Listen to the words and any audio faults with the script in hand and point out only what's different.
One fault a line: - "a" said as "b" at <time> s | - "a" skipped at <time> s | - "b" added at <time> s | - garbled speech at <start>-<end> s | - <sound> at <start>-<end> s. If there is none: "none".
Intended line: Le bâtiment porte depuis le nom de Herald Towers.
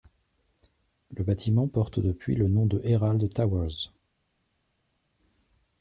none